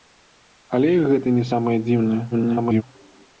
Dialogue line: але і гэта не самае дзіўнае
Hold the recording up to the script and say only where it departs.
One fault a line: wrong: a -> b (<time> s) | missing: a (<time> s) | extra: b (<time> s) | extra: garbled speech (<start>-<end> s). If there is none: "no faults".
extra: garbled speech (2.3-2.8 s)